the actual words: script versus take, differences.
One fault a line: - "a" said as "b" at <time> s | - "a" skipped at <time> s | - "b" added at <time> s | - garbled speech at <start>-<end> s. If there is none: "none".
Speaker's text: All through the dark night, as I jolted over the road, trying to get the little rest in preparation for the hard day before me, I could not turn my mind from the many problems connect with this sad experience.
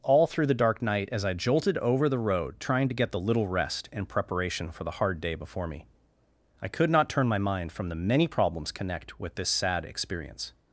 none